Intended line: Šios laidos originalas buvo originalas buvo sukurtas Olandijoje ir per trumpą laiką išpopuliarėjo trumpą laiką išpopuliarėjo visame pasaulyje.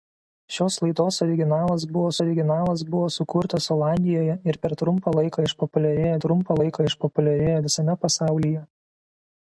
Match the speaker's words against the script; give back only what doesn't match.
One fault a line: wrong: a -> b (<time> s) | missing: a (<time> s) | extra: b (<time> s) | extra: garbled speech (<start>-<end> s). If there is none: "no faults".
no faults